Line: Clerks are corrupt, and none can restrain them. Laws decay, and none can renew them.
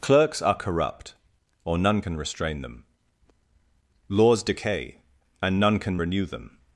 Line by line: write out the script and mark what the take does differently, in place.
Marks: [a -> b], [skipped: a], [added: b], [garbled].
Clerks are corrupt, [and -> or] none can restrain them. Laws decay, and none can renew them.